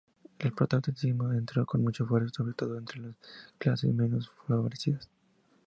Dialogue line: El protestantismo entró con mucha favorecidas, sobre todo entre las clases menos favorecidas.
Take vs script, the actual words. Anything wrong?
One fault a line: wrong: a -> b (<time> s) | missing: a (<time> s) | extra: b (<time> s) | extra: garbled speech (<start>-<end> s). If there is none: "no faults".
wrong: favorecidas -> fuerza (2.1 s)